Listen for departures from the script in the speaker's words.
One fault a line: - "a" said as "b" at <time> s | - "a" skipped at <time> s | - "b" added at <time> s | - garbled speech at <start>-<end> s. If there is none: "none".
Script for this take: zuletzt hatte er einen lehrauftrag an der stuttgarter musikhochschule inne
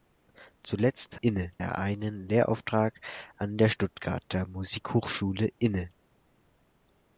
- "hatte" said as "inne" at 1.2 s